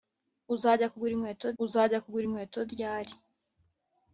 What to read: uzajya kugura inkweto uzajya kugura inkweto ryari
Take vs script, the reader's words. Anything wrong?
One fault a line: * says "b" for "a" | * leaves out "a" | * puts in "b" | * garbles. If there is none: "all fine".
all fine